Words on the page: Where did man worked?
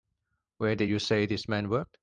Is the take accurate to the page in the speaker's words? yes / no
no